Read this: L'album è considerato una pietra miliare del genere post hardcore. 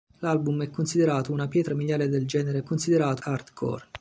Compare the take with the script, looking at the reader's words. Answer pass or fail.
fail